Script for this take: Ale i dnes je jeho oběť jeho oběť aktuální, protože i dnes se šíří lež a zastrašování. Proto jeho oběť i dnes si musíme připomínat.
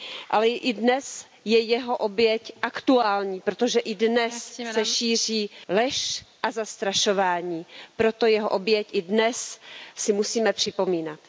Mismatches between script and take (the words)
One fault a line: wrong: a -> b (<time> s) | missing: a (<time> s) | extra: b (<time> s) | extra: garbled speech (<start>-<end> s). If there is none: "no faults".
missing: jeho oběť (2.5 s)